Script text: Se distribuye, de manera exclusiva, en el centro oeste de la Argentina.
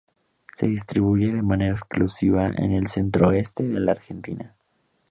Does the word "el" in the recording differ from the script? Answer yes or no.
no